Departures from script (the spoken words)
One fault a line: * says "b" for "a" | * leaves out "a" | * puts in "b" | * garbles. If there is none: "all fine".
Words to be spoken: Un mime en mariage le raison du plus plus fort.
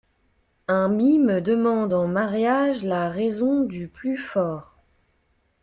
* puts in "demande"
* says "la" for "le"
* leaves out "plus"